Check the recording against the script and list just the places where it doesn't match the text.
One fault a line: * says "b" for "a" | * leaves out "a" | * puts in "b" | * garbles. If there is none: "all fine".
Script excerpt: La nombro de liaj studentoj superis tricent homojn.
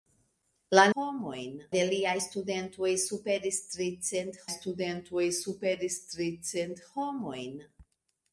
* says "homojn" for "nombro"
* puts in "studentoj superis tricent"